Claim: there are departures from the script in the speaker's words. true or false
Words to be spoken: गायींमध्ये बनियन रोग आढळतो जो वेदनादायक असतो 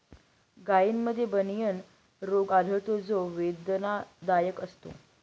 false